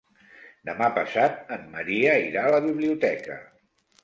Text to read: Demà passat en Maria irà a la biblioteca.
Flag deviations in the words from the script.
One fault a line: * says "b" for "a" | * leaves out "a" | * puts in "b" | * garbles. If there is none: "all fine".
all fine